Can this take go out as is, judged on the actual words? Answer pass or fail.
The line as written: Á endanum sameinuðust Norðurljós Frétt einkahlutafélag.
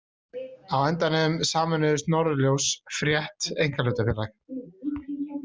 pass